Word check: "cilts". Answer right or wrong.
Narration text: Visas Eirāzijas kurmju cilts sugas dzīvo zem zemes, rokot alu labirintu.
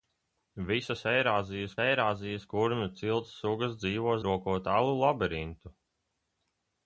right